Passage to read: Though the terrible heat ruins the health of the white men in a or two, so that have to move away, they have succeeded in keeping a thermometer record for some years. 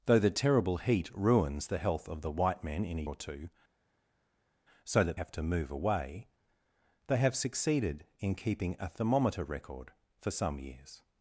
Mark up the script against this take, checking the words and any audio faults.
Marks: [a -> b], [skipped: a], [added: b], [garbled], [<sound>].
Though the terrible heat ruins the health of the white men in a or two, so that have to move away, they have succeeded in keeping a thermometer record for some years.